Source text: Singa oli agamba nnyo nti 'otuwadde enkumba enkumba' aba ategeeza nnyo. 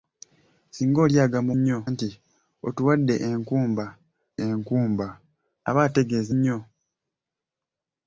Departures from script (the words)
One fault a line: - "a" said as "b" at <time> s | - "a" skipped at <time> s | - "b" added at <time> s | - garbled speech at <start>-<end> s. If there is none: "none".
none